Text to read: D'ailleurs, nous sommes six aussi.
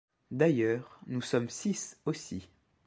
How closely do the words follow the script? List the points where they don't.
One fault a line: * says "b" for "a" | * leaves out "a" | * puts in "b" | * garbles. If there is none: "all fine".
all fine